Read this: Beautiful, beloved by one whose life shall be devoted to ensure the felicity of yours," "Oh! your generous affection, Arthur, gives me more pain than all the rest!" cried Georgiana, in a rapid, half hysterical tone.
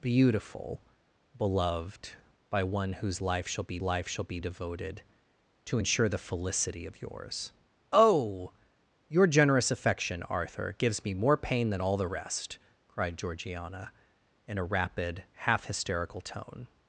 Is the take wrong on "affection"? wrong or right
right